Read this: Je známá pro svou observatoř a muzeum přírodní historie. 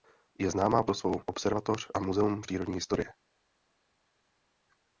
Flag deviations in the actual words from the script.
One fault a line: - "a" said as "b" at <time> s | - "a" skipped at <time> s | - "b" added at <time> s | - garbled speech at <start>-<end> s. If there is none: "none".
none